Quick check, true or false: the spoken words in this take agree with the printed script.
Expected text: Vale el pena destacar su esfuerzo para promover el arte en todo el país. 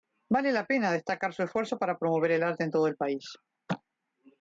false